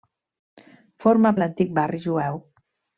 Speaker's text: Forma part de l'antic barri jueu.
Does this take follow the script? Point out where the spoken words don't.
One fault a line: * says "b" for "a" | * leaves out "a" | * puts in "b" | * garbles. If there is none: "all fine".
* leaves out "part"